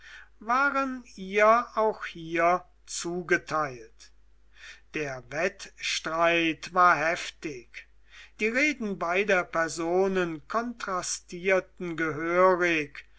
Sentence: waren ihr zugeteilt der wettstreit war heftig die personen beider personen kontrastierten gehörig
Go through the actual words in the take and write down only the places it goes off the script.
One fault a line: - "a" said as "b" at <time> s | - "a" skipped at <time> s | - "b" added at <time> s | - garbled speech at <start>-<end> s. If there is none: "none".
- "auch hier" added at 1.8 s
- "personen" said as "reden" at 8.5 s